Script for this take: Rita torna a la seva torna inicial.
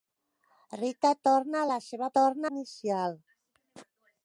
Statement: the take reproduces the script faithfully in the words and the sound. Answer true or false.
true